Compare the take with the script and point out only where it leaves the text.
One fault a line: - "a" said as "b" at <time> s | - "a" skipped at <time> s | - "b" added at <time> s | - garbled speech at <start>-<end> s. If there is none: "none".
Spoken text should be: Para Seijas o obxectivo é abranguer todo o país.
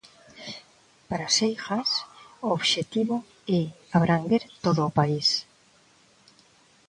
none